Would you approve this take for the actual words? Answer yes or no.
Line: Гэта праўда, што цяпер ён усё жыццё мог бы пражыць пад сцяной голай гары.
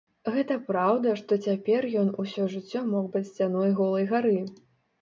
no